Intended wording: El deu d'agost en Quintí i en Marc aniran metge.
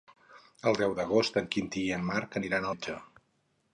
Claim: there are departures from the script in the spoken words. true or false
false